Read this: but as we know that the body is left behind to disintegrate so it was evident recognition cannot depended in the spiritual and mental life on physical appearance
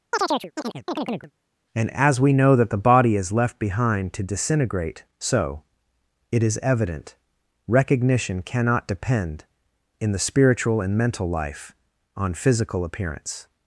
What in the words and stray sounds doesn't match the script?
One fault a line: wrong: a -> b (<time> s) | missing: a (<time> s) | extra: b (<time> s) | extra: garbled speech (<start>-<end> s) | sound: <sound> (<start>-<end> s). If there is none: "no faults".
sound: chirp (0.1-1.3 s)
wrong: but -> and (1.7 s)
wrong: was -> is (6.4 s)
wrong: depended -> depend (8.9 s)